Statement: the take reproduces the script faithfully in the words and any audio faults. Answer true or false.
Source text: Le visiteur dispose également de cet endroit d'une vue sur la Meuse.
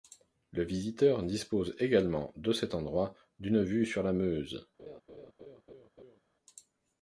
false